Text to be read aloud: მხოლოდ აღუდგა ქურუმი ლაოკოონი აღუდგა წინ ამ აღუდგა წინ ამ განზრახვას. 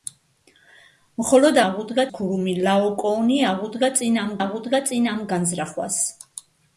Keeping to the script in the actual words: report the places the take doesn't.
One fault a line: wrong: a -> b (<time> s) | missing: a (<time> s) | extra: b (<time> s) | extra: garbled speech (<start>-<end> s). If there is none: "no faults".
no faults